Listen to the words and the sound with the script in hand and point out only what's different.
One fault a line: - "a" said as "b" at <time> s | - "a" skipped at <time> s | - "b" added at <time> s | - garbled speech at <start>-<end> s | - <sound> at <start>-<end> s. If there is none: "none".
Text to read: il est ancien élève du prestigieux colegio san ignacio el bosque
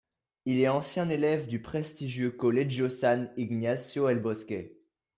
none